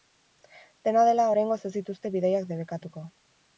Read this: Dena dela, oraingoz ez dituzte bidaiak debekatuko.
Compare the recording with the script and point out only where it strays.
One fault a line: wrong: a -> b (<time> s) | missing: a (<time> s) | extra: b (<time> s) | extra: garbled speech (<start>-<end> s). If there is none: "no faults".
no faults